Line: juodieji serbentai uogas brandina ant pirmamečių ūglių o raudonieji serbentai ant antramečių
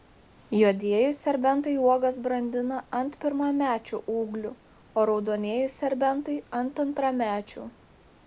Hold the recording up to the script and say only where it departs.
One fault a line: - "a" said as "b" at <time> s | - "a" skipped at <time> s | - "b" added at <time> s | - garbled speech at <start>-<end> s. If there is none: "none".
none